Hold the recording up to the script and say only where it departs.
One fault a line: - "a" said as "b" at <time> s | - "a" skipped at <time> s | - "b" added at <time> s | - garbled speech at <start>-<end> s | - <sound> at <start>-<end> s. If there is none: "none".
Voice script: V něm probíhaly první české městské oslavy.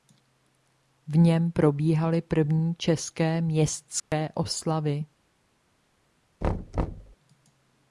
- dropout at 4.0-4.1 s
- thud at 6.4-7.2 s